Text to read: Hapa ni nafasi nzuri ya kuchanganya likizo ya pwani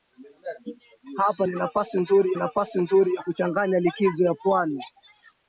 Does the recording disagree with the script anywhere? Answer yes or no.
yes